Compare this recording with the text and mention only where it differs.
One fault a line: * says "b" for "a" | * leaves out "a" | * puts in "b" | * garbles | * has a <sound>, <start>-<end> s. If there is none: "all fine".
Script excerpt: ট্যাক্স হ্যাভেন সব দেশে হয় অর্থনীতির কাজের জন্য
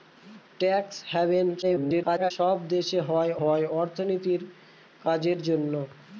* garbles
* puts in "হয়"